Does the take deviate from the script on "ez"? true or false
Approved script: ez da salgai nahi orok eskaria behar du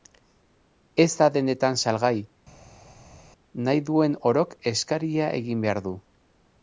false